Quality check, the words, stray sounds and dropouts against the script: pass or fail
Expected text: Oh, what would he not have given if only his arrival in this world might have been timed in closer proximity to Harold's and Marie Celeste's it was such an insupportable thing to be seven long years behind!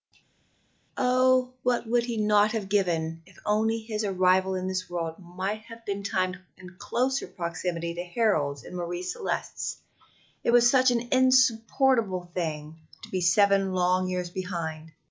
pass